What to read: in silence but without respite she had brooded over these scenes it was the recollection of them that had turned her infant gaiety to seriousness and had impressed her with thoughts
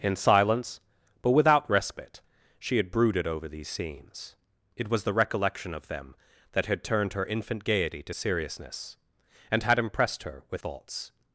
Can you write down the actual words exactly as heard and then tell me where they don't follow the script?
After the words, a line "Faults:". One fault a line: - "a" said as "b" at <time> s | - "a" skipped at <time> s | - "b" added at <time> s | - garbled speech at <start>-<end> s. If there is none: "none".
in silence but without respite she had brooded over these scenes it was the recollection of them that had turned her infant gaiety to seriousness and had impressed her with thoughts
Faults:
none